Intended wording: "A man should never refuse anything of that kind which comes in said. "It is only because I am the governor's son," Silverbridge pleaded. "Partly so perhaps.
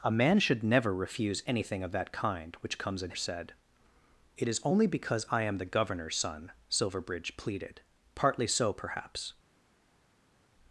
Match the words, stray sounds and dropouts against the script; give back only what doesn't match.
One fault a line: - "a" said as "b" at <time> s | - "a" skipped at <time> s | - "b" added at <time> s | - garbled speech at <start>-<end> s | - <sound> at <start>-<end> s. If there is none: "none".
none